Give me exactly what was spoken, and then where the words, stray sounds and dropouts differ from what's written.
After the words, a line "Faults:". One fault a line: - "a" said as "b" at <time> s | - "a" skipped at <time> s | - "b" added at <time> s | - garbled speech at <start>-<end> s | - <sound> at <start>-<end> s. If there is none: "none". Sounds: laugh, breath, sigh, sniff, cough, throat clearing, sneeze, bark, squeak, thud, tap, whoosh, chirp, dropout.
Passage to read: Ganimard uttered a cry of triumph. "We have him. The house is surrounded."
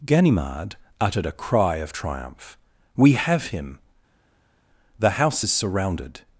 Ganimard uttered a cry of triumph. "We have him. The house is surrounded."
Faults:
none